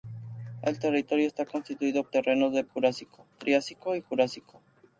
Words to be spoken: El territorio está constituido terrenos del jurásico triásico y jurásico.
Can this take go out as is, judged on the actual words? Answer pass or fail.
pass